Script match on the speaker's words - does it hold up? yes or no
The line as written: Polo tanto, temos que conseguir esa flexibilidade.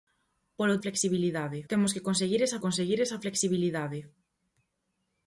no